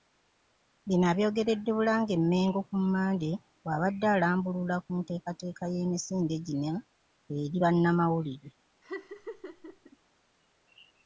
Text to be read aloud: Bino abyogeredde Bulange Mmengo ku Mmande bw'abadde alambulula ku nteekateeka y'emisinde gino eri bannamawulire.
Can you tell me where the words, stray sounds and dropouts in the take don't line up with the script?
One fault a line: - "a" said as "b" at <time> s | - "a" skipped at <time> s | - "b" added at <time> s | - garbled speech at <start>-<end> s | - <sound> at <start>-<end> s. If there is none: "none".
- laugh at 8.8-10.0 s